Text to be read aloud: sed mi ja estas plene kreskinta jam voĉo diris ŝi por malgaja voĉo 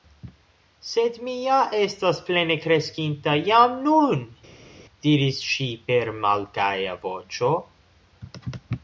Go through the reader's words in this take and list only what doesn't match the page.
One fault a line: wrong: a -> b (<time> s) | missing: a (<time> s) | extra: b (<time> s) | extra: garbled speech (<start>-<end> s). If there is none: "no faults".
wrong: voĉo -> nun (3.9 s)
wrong: por -> per (5.9 s)